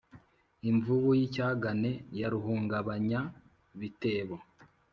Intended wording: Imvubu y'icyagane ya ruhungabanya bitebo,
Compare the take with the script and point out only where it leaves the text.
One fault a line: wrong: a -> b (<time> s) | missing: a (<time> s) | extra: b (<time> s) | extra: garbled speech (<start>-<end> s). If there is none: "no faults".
no faults